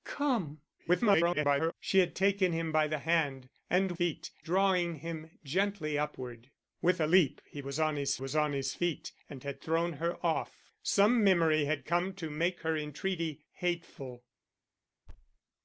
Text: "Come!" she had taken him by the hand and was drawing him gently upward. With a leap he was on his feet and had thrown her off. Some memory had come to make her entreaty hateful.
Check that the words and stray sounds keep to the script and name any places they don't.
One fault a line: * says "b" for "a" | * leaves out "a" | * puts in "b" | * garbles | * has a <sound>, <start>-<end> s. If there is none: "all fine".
* garbles
* says "feet" for "was"
* puts in "was on his"
* has a thud, 15.1-15.4 s